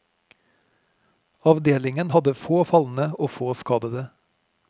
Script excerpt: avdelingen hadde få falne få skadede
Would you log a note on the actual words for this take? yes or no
yes